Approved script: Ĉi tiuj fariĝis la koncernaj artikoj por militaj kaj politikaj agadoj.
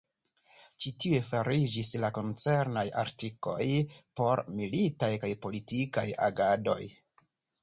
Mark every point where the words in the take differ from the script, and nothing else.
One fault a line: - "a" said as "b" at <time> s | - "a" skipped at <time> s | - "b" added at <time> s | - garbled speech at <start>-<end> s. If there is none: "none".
none